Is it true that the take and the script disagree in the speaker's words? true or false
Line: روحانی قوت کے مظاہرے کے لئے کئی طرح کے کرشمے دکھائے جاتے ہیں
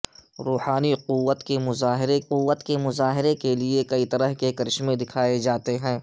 true